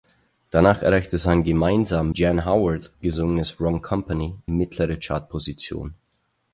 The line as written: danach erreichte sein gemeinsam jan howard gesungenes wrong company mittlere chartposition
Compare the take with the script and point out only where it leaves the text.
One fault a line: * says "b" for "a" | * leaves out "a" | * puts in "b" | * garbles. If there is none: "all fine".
all fine